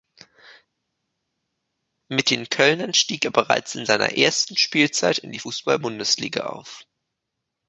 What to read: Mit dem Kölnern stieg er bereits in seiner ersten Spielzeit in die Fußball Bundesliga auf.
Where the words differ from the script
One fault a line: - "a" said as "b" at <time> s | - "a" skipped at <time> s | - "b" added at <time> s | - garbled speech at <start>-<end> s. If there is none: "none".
- "dem" said as "den" at 2.3 s